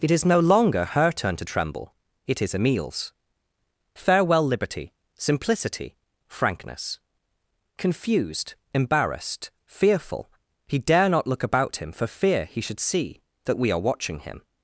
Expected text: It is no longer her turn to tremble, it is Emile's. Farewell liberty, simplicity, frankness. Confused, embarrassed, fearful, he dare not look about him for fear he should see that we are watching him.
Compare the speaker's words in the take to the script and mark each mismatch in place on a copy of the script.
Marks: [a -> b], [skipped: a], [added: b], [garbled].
It is no longer her turn to tremble, it is Emile's. Farewell liberty, simplicity, frankness. Confused, embarrassed, fearful, he dare not look about him for fear he should see that we are watching him.